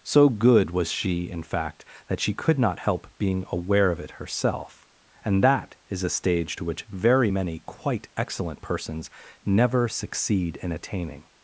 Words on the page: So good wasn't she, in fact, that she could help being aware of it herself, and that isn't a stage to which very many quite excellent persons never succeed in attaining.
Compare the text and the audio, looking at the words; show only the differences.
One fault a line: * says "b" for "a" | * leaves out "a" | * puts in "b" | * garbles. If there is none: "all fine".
* says "was" for "wasn't"
* puts in "not"
* says "is" for "isn't"